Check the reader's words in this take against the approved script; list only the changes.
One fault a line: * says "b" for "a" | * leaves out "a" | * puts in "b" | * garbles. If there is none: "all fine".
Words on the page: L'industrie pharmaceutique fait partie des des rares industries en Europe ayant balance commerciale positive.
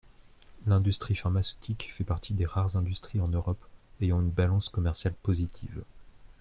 * leaves out "des"
* puts in "une"